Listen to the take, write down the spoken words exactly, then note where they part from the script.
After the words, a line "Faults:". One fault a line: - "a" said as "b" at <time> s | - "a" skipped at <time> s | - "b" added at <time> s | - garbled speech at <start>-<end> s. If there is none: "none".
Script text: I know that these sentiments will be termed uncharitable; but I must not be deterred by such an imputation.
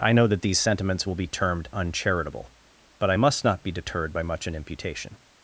I know that these sentiments will be termed uncharitable; but I must not be deterred by much an imputation.
Faults:
- "such" said as "much" at 4.2 s